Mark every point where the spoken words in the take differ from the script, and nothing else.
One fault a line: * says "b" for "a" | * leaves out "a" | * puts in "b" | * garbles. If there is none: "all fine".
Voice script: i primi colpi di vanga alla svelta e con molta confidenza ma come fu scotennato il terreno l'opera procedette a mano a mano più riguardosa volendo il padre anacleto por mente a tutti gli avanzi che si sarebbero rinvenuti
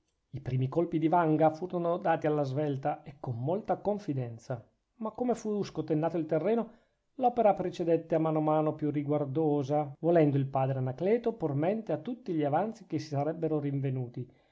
* puts in "furono dati"